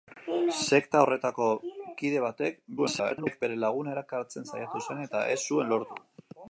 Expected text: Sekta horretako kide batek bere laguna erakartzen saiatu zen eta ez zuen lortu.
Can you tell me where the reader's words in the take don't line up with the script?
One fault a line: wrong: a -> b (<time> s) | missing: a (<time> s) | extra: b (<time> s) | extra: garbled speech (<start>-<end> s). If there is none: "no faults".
extra: garbled speech (2.8-3.4 s)